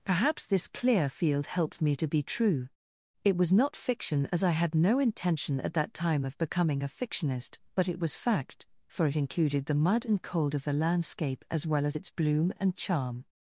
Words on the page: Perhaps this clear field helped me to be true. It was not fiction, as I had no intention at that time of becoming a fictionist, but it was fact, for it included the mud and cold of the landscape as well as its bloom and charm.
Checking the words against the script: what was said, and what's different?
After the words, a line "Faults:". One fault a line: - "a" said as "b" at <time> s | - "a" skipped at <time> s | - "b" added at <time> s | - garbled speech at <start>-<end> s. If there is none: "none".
Perhaps this clear field helped me to be true. It was not fiction, as I had no intention at that time of becoming a fictionist, but it was fact, for it included the mud and cold of the landscape as well as its bloom and charm.
Faults:
none